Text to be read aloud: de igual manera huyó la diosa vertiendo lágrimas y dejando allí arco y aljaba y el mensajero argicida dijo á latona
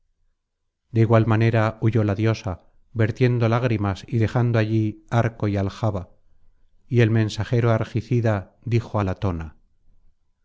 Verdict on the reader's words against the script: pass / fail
pass